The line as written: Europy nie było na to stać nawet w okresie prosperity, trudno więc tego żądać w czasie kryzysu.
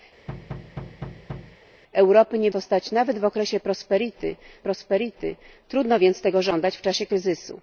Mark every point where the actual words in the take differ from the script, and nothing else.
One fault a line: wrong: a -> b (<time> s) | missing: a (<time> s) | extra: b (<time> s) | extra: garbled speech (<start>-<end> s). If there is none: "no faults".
missing: było na (2.5 s)
extra: prosperity (4.6 s)